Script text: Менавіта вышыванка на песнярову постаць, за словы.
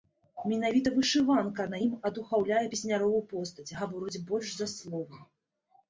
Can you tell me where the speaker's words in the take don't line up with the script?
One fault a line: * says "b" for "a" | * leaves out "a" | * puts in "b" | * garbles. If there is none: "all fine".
* puts in "ім адухаўляе"
* puts in "гаворыць больш"